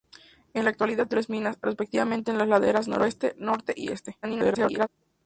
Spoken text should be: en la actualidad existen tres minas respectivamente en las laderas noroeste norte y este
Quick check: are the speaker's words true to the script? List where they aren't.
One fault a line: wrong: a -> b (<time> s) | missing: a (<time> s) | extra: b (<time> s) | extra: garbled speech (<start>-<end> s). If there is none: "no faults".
missing: existen (1.1 s)
extra: garbled speech (4.2-4.9 s)